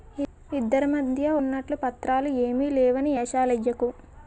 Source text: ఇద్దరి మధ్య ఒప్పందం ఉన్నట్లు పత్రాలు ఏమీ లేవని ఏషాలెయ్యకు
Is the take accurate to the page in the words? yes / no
no